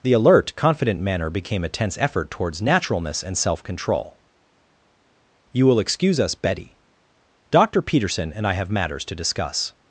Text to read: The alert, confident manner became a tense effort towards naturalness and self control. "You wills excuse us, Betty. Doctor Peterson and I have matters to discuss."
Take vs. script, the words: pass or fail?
fail